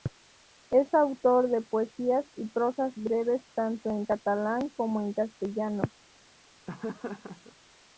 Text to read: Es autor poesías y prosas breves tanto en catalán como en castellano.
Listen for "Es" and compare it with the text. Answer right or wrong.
right